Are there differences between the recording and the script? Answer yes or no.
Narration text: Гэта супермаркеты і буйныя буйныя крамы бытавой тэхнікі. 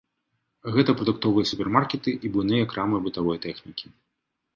yes